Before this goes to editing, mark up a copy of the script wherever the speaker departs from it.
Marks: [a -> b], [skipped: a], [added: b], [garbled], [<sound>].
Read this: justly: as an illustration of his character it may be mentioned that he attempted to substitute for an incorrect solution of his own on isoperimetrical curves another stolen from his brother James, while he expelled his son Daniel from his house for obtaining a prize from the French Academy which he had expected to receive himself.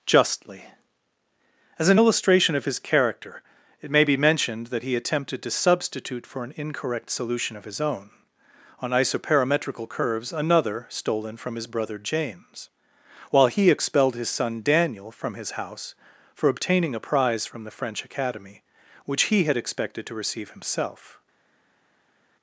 justly: as an illustration of his character it may be mentioned that he attempted to substitute for an incorrect solution of his own on isoperimetrical curves another stolen from his brother James, while he expelled his son Daniel from his house for obtaining a prize from the French Academy which he had expected to receive himself.